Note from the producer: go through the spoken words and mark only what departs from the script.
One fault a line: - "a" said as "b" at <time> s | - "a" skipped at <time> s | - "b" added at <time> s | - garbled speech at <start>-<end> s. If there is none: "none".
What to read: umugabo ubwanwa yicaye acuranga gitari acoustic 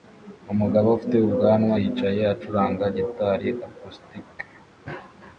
- "ufite" added at 1.0 s